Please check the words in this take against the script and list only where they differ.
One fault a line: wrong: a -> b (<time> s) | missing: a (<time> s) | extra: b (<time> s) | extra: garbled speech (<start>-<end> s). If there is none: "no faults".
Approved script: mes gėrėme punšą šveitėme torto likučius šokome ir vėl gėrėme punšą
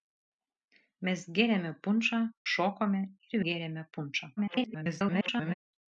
missing: šveitėme torto likučius (2.2 s)
missing: vėl (3.4 s)
extra: garbled speech (4.4-5.5 s)